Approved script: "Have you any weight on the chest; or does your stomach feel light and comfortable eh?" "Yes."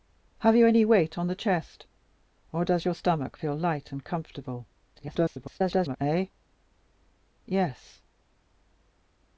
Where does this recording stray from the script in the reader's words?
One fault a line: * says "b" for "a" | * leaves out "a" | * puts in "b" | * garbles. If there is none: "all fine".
* garbles